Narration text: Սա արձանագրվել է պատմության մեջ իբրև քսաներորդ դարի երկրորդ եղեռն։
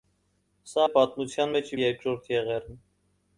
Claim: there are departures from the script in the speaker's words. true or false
true